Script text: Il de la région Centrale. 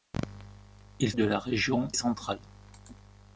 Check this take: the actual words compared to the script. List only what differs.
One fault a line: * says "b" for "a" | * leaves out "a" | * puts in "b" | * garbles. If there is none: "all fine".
all fine